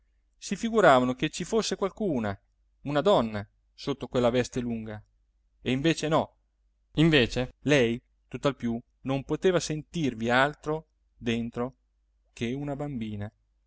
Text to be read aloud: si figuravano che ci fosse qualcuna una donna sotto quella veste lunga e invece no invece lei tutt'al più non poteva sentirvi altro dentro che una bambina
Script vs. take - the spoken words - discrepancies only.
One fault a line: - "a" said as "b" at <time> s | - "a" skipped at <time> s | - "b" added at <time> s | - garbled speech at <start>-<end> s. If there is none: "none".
none